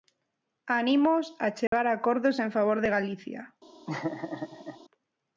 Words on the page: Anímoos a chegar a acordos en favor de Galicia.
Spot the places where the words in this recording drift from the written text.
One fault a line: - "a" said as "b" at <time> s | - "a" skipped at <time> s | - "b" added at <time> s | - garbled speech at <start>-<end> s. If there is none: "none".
none